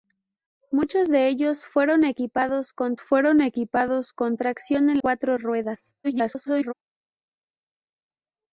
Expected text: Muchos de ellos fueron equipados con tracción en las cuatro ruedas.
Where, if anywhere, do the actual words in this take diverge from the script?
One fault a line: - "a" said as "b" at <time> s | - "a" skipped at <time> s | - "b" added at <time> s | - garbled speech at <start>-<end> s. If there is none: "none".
- "fueron equipados con" added at 3.0 s
- "las" skipped at 5.0 s
- garbled speech at 6.0-6.7 s